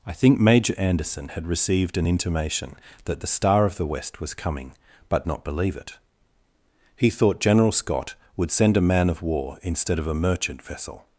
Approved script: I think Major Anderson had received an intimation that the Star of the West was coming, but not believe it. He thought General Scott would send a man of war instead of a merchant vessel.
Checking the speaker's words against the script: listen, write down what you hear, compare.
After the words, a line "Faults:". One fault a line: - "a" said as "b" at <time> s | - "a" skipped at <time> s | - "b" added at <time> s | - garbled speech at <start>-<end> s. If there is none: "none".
I think Major Anderson had received an intimation that the Star of the West was coming, but not believe it. He thought General Scott would send a man of war instead of a merchant vessel.
Faults:
none